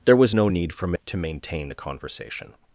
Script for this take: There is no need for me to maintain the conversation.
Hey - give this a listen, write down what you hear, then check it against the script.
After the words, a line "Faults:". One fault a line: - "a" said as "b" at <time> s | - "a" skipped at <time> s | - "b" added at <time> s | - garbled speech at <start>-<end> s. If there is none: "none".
There was no need for me to maintain the conversation.
Faults:
- "is" said as "was" at 0.1 s